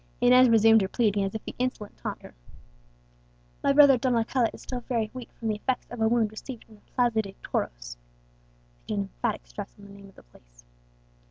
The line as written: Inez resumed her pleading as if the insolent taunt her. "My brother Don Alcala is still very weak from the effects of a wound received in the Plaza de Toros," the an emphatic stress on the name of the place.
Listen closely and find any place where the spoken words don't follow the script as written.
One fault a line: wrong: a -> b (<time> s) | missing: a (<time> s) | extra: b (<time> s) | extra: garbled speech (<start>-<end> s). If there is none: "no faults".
no faults